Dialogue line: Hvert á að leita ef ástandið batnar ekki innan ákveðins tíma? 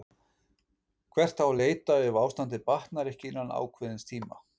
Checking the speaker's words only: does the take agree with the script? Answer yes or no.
yes